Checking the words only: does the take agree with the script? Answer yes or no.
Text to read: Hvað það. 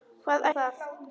yes